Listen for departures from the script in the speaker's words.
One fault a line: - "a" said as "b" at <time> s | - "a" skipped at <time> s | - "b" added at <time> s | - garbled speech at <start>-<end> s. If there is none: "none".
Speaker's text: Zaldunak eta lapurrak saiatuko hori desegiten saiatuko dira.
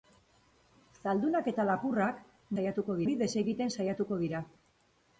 none